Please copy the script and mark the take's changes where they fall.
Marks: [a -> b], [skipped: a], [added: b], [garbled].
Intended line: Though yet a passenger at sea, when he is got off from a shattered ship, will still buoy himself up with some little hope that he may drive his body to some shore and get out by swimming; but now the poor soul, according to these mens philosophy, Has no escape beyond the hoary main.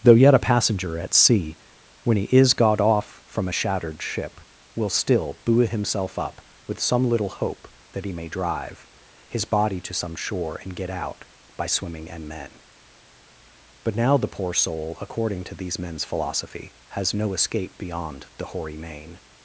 Though yet a passenger at sea, when he is got off from a shattered ship, will still buoy himself up with some little hope that he may drive his body to some shore and get out by swimming; [added: and men] but now the poor soul, according to these mens philosophy, Has no escape beyond the hoary main.